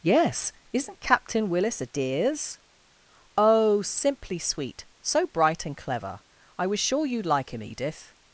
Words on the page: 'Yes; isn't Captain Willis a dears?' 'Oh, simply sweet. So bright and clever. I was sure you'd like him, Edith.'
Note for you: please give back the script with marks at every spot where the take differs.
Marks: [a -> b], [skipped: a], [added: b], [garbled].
'Yes; isn't Captain Willis a dears?' 'Oh, simply sweet. So bright and clever. I was sure you'd like him, Edith.'